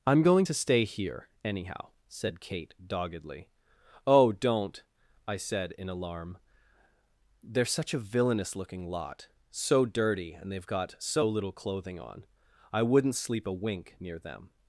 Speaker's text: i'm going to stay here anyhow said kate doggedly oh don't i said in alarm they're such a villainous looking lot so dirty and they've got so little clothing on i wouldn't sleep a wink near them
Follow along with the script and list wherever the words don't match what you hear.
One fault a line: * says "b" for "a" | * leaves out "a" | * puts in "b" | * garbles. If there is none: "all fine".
all fine